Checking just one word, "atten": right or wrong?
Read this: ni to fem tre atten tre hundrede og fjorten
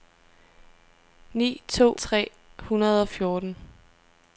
wrong